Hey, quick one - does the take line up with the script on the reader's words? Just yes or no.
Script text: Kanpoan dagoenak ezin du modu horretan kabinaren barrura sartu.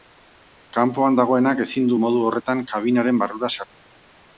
yes